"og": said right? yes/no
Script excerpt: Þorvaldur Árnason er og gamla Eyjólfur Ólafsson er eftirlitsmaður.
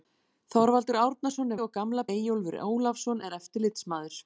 yes